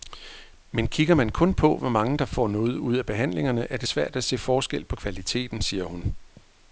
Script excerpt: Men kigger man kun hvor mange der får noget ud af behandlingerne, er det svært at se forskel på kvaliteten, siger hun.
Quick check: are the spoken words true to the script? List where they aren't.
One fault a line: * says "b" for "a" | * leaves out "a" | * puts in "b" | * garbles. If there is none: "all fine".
* puts in "på"